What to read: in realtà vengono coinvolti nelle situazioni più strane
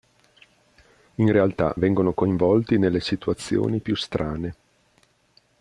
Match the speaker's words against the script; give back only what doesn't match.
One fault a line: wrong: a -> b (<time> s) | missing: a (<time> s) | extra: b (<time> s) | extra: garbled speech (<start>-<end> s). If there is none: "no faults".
no faults